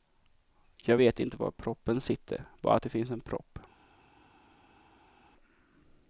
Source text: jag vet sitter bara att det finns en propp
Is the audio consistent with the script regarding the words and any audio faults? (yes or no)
no